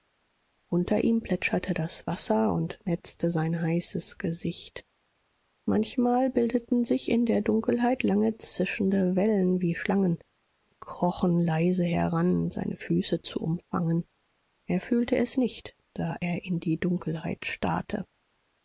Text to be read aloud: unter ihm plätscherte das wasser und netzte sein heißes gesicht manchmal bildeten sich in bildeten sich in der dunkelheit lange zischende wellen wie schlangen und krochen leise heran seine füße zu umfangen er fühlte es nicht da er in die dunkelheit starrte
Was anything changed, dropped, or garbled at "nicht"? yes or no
no